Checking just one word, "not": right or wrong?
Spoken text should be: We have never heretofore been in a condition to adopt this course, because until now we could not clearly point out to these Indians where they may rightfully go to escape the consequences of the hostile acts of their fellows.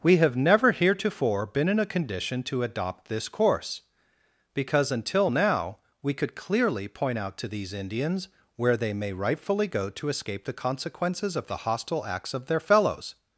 wrong